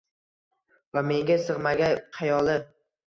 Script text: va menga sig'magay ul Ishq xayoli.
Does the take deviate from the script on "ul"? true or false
true